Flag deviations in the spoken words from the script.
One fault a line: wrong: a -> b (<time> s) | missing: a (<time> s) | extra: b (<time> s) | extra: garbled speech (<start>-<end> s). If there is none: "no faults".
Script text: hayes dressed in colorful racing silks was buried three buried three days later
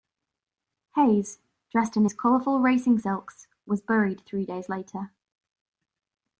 extra: his (2.0 s)
missing: buried three (4.4 s)